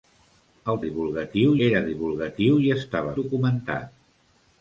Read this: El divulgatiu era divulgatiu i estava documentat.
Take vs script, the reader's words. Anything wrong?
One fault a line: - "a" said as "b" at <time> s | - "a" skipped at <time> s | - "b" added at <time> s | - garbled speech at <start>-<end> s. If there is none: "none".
none